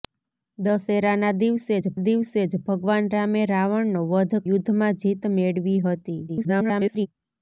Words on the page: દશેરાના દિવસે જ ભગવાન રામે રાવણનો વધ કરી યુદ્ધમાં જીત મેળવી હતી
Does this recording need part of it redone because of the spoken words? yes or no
yes